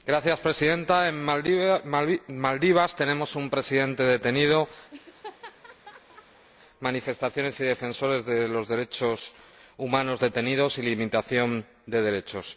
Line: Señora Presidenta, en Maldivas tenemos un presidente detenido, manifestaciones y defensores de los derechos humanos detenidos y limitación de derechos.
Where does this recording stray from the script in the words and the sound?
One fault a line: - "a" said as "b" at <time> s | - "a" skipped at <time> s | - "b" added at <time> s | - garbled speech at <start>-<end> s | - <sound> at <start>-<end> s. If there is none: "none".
- laugh at 4.9-6.5 s